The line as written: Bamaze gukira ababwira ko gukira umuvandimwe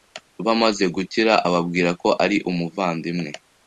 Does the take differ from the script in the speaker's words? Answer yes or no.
yes